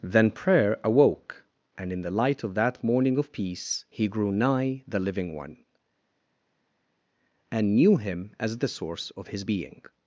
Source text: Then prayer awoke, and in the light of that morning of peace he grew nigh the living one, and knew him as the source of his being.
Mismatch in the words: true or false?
false